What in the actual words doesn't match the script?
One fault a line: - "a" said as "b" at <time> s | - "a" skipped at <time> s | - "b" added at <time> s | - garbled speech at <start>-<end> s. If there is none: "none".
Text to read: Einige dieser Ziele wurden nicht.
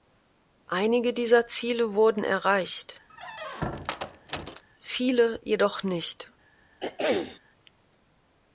- "erreicht viele jedoch" added at 2.2 s